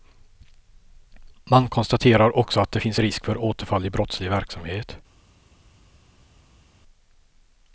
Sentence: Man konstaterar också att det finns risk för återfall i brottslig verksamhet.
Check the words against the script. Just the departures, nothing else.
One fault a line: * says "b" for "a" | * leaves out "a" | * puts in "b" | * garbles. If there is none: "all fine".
all fine